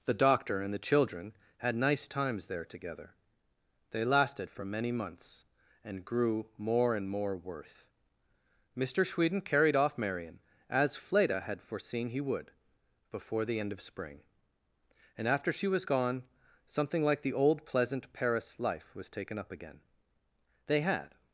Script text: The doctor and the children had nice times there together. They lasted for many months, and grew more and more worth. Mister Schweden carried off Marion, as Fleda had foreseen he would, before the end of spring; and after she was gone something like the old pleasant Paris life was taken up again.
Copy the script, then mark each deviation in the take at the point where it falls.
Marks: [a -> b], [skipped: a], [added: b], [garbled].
The doctor and the children had nice times there together. They lasted for many months, and grew more and more worth. Mister Schweden carried off Marion, as Fleda had foreseen he would, before the end of spring; and after she was gone something like the old pleasant Paris life was taken up again. [added: They had]